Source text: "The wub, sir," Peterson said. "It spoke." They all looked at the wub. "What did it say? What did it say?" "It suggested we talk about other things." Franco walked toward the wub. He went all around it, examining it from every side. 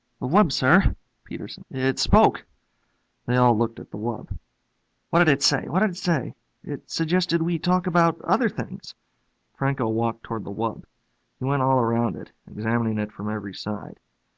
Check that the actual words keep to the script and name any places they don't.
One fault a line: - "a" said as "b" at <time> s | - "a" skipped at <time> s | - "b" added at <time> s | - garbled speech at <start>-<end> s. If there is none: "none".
- "said" skipped at 1.6 s